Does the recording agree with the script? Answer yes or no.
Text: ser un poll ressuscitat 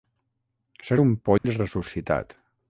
yes